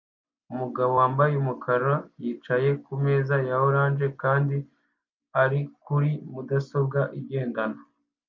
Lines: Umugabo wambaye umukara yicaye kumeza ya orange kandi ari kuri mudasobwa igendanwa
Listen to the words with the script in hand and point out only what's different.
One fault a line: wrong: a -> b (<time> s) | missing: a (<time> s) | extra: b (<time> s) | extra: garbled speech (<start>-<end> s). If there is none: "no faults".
no faults